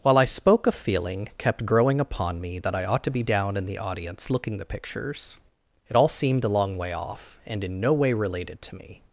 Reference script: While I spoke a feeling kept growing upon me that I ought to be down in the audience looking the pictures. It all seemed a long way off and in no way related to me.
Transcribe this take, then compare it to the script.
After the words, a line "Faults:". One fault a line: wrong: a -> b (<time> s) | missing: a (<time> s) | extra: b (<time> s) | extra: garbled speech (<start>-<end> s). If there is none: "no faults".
While I spoke a feeling kept growing upon me that I ought to be down in the audience looking the pictures. It all seemed a long way off and in no way related to me.
Faults:
no faults